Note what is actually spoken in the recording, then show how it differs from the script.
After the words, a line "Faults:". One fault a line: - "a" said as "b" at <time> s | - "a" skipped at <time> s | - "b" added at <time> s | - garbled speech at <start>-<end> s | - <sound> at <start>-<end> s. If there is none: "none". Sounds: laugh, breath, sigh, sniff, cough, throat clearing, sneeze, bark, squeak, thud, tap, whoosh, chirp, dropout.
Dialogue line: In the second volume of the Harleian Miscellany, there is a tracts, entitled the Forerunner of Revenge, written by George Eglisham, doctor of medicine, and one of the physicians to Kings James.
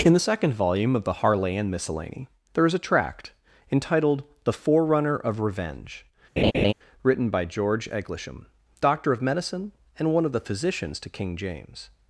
In the second volume of the Harleian Miscellany, there is a tract, entitled the Forerunner of Revenge, written by George Eglisham, doctor of medicine, and one of the physicians to King James.
Faults:
- "tracts" said as "tract" at 2.8 s
- laugh at 6.4-6.7 s
- "Kings" said as "King" at 11.1 s